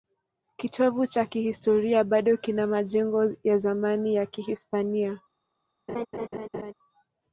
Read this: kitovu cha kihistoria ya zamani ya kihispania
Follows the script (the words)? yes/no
no